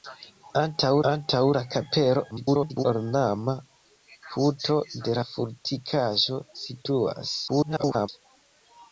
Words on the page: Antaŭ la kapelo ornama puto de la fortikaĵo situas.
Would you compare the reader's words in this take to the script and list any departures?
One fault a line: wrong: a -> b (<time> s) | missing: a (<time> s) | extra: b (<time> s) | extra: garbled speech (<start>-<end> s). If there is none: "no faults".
extra: antaŭ (1.1 s)
extra: garbled speech (2.3-2.8 s)
extra: garbled speech (7.5-8.1 s)